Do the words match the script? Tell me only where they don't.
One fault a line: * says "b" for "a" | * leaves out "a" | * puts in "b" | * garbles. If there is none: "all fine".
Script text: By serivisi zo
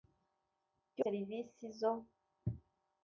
all fine